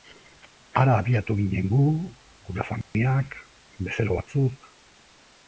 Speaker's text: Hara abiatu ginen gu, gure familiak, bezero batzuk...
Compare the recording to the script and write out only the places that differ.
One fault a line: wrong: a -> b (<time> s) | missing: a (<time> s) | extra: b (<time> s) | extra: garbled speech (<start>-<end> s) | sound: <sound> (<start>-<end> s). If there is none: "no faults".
sound: dropout (2.8-2.9 s)